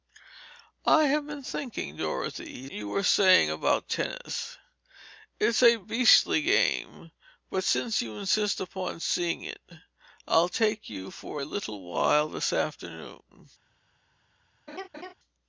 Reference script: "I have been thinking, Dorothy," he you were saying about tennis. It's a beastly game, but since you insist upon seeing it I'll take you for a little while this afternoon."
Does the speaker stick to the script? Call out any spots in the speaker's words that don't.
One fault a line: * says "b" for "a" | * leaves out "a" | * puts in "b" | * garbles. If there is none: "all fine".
all fine